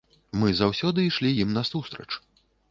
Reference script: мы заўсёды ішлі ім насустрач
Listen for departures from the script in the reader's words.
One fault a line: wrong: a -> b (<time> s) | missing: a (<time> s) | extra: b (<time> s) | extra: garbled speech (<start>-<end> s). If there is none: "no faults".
no faults